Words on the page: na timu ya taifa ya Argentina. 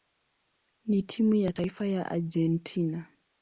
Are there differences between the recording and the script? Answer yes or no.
no